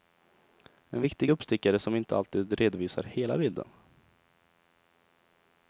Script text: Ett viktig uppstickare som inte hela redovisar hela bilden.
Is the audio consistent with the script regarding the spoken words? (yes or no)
no